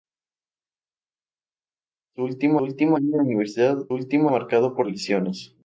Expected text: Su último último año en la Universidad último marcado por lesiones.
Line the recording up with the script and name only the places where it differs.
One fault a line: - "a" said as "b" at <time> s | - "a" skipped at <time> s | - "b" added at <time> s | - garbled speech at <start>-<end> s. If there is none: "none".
none